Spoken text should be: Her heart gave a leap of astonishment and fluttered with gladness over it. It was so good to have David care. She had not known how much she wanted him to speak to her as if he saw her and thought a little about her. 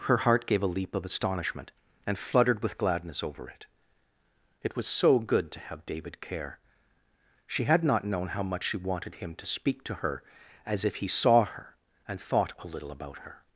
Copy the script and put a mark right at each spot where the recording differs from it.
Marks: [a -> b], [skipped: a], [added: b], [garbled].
Her heart gave a leap of astonishment and fluttered with gladness over it. It was so good to have David care. She had not known how much she wanted him to speak to her as if he saw her and thought a little about her.